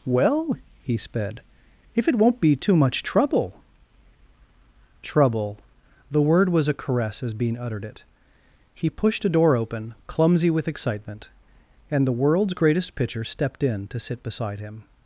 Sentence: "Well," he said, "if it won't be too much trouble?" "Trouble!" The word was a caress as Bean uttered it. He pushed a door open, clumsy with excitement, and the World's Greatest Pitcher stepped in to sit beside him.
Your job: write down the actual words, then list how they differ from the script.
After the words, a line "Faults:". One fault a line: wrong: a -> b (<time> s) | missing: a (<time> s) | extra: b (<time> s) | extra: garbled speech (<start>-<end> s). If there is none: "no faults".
"Well," he sped, "if it won't be too much trouble?" "Trouble!" The word was a caress as Bean uttered it. He pushed a door open, clumsy with excitement, and the World's Greatest Pitcher stepped in to sit beside him.
Faults:
wrong: said -> sped (1.0 s)